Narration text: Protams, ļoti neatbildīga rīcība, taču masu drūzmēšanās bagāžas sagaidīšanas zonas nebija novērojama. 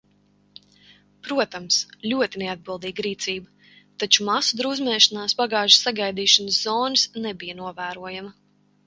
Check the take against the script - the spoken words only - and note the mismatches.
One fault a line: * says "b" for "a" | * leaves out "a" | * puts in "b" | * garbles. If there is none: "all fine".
all fine